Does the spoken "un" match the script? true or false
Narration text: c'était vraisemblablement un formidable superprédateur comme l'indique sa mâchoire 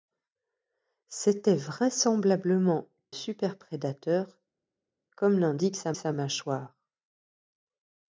false